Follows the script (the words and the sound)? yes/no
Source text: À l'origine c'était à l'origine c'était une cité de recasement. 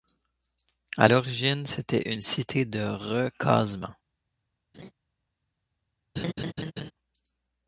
no